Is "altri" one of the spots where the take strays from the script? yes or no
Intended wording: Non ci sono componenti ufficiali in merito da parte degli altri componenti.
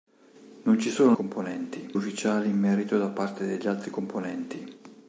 no